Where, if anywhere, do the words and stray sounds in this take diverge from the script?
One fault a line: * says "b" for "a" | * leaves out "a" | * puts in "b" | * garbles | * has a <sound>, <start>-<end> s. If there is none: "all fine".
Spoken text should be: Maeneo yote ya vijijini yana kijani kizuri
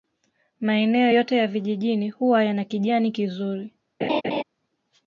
* puts in "huwa"
* has a laugh, 4.0-4.4 s